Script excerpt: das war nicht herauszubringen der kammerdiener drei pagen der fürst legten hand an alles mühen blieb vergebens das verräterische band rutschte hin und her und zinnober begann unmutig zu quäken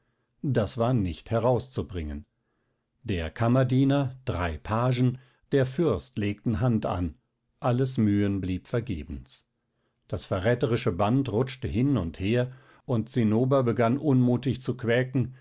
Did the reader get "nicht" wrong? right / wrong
right